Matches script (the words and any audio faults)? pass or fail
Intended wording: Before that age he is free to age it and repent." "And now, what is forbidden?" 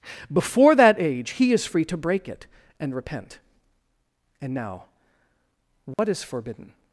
fail